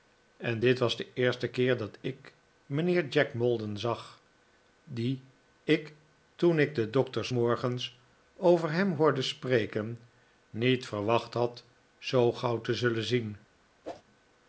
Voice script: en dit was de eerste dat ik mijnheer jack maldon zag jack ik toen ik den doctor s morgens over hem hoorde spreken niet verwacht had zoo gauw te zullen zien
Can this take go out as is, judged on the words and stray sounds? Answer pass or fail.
fail